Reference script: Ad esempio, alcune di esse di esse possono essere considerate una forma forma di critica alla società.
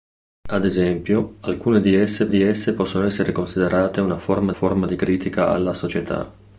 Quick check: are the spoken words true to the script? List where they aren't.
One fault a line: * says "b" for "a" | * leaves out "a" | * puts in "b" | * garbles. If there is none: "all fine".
all fine